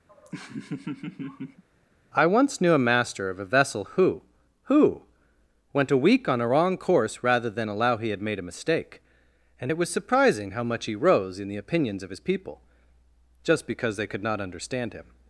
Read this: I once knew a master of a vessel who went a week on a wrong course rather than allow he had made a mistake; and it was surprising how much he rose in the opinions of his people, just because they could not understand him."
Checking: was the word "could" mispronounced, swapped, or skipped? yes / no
no